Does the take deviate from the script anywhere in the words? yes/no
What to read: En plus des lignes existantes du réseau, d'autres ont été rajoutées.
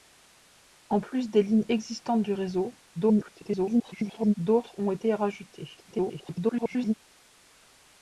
yes